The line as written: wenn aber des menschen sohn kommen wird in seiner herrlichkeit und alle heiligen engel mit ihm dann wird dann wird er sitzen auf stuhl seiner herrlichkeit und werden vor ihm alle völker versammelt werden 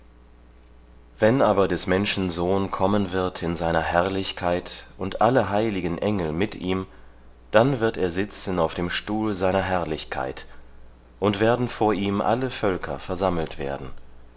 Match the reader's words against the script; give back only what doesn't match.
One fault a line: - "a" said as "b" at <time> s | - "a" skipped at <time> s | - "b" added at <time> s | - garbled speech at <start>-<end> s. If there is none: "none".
- "dann wird" skipped at 8.0 s
- "dem" added at 8.7 s